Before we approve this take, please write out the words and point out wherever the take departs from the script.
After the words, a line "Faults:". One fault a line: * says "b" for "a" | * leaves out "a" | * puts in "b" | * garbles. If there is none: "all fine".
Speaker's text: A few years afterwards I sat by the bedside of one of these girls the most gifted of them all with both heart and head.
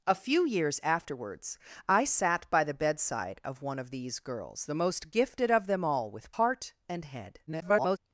A few years afterwards I sat by the bedside of one of these girls the most gifted of them all with heart and head. [garbled]
Faults:
* leaves out "both"
* garbles